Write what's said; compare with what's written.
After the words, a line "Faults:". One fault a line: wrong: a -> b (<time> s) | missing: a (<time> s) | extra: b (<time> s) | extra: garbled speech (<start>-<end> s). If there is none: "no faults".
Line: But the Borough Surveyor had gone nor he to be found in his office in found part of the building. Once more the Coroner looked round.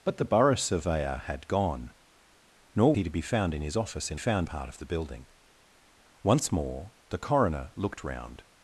But the Borough Surveyor had gone nor he to be found in his office in found part of the building. Once more the Coroner looked round.
Faults:
no faults